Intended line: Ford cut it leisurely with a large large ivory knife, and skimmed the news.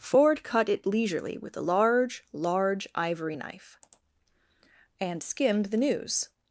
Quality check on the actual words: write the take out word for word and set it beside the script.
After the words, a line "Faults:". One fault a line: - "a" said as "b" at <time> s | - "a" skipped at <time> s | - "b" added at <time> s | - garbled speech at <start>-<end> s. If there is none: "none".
Ford cut it leisurely with a large large ivory knife, and skimmed the news.
Faults:
none